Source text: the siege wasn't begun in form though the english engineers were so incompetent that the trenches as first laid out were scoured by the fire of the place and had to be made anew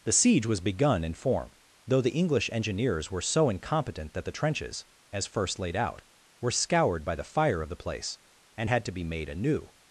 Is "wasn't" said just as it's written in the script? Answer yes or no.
no